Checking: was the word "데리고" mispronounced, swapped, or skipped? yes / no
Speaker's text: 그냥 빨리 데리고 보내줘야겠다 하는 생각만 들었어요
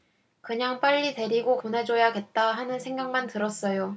no